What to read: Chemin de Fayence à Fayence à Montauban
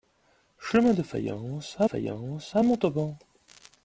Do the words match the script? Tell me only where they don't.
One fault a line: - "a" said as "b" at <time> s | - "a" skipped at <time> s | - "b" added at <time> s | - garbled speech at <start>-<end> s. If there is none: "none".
none